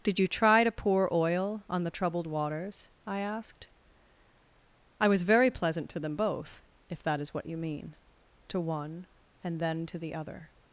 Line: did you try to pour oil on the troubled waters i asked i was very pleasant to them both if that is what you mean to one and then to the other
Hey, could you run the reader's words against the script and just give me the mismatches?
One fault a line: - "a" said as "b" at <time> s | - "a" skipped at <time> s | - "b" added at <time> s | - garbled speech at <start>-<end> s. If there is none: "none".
none